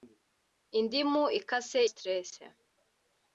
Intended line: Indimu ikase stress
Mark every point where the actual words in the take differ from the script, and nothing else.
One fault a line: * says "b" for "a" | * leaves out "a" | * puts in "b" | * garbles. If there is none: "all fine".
all fine